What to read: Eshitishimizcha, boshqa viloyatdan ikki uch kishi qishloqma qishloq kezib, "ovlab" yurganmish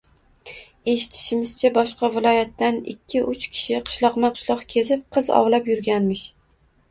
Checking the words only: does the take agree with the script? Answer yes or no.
no